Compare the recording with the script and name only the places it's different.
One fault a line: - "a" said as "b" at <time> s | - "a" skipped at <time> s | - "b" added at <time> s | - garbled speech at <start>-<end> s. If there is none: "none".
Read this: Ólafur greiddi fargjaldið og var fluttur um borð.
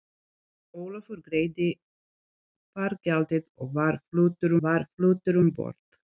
- "var fluttur" added at 4.6 s